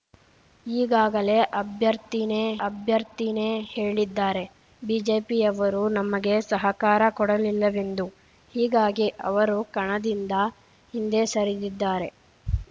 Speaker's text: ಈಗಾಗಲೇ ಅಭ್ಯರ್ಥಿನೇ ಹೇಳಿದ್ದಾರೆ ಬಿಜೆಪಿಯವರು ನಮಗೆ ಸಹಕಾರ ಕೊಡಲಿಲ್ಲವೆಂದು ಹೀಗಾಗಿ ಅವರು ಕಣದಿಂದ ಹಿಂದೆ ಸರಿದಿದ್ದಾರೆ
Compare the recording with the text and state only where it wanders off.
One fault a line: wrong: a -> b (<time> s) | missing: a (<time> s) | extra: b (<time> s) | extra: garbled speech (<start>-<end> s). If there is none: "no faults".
extra: ಅಭ್ಯರ್ಥಿನೇ (2.7 s)